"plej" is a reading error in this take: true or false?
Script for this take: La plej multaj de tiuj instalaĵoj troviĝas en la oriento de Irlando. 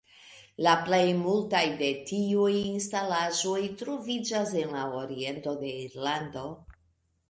false